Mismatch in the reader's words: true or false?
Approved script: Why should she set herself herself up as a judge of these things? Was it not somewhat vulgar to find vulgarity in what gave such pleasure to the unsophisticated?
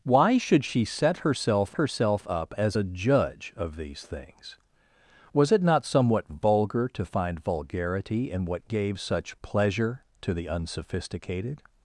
false